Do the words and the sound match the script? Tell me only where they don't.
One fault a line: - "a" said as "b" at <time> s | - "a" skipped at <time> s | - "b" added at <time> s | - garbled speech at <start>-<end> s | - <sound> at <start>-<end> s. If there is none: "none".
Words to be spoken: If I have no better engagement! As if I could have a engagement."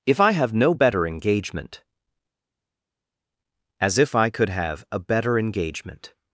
- "better" added at 5.0 s